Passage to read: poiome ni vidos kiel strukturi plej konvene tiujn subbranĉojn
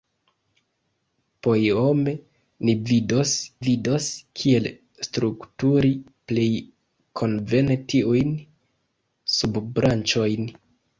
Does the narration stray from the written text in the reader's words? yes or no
yes